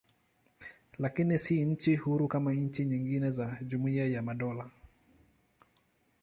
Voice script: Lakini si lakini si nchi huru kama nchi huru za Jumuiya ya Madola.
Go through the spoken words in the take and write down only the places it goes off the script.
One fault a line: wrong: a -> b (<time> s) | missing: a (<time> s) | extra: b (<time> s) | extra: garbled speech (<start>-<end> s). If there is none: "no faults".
missing: lakini si (1.6 s)
wrong: huru -> nyingine (2.8 s)